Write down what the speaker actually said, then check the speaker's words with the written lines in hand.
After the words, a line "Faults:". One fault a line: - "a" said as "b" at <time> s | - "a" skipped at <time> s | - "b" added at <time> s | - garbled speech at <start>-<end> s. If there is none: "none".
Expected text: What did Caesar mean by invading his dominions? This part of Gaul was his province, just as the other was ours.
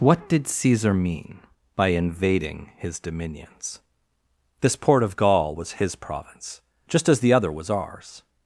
What did Caesar mean by invading his dominions? This port of Gaul was his province, just as the other was ours.
Faults:
- "part" said as "port" at 4.8 s